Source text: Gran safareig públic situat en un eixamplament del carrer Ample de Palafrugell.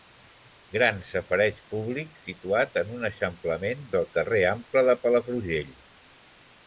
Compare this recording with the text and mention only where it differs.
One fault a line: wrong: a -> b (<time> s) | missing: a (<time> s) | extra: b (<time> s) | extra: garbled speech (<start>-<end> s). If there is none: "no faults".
no faults